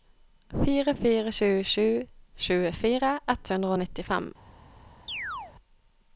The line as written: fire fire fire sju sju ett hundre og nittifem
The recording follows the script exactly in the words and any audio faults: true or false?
false